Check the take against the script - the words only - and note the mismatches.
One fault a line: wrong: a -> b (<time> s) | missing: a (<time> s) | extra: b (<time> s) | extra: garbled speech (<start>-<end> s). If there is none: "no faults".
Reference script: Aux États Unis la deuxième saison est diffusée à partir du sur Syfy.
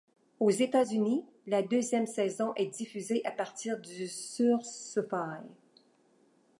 no faults